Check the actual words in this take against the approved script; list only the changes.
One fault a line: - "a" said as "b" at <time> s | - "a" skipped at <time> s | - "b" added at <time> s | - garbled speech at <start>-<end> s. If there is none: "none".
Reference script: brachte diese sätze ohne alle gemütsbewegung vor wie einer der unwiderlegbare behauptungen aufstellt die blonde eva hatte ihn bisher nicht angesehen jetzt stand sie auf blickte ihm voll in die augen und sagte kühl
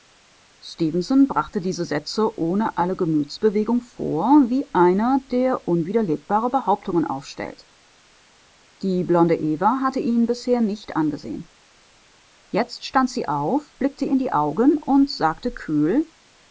- "ihm voll" skipped at 14.1 s